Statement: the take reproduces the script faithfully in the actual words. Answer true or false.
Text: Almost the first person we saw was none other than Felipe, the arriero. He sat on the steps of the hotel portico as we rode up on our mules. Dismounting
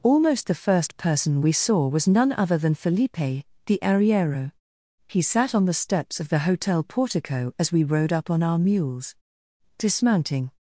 true